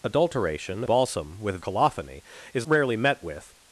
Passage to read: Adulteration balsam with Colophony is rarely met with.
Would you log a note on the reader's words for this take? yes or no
no